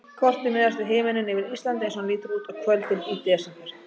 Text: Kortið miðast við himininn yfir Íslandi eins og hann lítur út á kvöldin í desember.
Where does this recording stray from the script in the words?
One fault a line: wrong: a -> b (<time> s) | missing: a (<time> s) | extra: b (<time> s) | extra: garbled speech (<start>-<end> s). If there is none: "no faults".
no faults